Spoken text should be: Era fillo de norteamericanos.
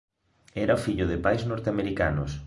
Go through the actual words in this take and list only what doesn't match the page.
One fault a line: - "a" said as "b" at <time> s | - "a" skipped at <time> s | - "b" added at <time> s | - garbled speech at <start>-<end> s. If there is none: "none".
- "pais" added at 1.2 s